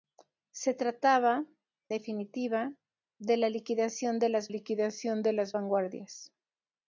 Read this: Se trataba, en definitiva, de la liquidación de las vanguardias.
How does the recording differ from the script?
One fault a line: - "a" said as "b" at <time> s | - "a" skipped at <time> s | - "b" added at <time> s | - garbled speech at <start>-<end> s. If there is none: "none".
- "en" skipped at 1.4 s
- "liquidación de las" added at 4.5 s